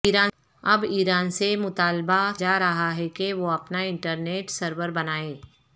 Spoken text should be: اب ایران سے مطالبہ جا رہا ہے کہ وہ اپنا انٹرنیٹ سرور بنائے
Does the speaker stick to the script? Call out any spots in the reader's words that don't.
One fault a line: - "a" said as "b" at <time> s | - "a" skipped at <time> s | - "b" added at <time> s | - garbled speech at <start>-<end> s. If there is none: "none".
none